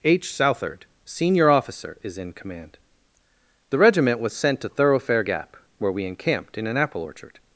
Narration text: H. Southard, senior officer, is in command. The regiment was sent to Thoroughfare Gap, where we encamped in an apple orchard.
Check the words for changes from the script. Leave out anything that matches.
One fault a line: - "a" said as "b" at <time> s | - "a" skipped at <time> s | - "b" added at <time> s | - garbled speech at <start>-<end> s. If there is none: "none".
none